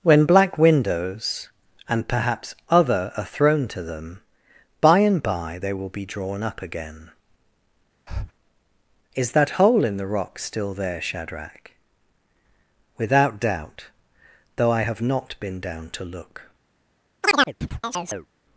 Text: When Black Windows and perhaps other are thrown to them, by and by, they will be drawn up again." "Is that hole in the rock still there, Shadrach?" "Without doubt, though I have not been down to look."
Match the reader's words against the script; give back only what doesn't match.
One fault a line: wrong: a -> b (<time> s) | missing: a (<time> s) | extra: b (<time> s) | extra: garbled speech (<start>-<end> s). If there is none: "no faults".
no faults